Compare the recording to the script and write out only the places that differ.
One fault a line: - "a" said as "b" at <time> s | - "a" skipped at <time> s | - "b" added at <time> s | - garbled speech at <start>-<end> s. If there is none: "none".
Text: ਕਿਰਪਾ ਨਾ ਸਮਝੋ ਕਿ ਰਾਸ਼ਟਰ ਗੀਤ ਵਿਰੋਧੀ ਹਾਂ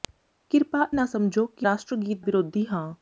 none